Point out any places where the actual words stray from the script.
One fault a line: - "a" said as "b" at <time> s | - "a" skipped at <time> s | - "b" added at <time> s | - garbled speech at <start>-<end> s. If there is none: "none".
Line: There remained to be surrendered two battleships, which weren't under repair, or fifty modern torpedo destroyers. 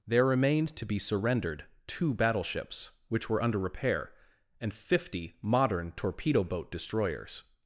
- "weren't" said as "were" at 3.3 s
- "or" said as "and" at 4.6 s
- "boat" added at 6.4 s